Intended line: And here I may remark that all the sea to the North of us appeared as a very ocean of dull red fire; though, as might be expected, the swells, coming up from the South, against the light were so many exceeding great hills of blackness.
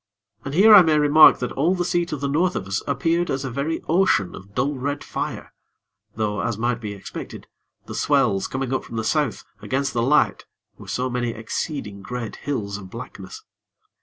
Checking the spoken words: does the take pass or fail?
pass